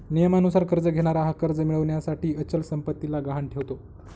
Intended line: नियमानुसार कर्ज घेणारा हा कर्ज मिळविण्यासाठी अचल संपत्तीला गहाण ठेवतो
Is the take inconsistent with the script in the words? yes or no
no